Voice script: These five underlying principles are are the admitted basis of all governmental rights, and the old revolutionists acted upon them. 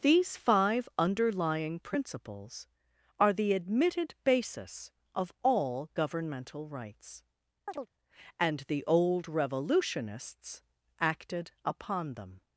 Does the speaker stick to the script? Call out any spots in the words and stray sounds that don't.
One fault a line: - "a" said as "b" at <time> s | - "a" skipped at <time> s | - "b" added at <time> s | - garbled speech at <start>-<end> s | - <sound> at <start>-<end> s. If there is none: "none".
- "are" skipped at 3.3 s
- chirp at 7.7-7.9 s